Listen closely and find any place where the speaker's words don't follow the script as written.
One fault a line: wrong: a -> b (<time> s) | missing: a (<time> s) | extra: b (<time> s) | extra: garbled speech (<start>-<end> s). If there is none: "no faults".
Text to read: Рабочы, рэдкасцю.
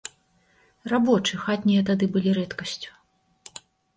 extra: хатнія тады былі (1.4 s)